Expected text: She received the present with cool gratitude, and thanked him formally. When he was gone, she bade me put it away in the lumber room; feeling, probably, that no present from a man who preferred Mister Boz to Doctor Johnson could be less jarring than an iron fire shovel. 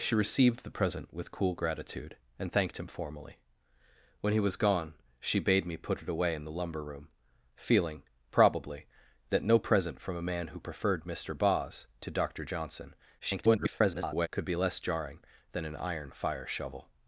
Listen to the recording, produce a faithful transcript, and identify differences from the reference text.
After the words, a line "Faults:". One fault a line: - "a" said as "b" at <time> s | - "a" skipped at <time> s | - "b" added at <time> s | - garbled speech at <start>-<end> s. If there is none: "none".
She received the present with cool gratitude, and thanked him formally. When he was gone, she bade me put it away in the lumber room; feeling, probably, that no present from a man who preferred Mister Boz to Doctor Johnson [garbled] could be less jarring than an iron fire shovel.
Faults:
- garbled speech at 13.2-14.3 s